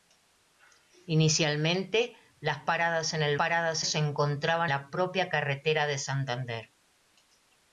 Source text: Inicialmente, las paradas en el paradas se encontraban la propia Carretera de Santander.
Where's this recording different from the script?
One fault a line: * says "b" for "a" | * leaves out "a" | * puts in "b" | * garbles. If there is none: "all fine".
all fine